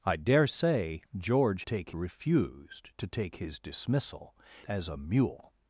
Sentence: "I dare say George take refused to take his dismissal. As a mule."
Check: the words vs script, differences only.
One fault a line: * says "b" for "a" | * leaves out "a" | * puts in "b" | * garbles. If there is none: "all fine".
all fine